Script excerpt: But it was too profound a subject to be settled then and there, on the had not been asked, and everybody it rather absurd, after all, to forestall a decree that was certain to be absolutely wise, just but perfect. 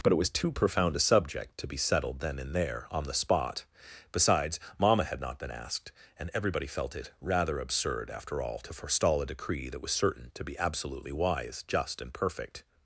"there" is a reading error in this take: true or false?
false